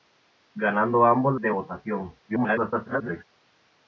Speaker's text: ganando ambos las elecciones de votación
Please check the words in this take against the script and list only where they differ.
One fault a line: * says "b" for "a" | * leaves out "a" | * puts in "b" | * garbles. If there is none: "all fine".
* leaves out "las elecciones"
* garbles